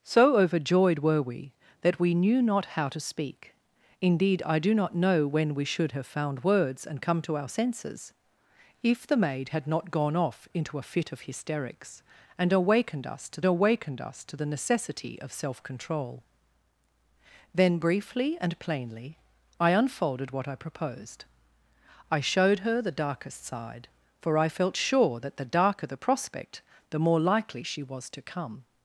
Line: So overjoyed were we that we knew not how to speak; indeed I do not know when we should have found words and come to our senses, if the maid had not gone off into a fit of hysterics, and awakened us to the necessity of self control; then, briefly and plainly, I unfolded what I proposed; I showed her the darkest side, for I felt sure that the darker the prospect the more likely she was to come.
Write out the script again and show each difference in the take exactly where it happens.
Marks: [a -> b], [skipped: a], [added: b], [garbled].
So overjoyed were we that we knew not how to speak; indeed I do not know when we should have found words and come to our senses, if the maid had not gone off into a fit of hysterics, and awakened us to [added: awakened us to] the necessity of self control; then, briefly and plainly, I unfolded what I proposed; I showed her the darkest side, for I felt sure that the darker the prospect the more likely she was to come.